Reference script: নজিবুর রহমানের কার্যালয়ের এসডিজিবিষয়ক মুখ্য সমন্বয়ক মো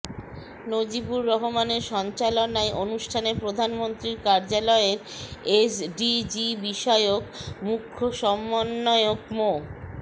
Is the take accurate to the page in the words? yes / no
no